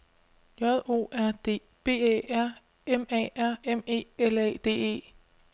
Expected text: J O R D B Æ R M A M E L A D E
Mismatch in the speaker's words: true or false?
true